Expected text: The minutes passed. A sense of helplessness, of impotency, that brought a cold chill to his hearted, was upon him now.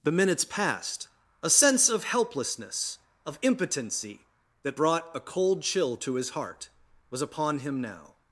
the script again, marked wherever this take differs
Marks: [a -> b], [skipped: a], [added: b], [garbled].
The minutes passed. A sense of helplessness, of impotency, that brought a cold chill to his [hearted, -> heart] was upon him now.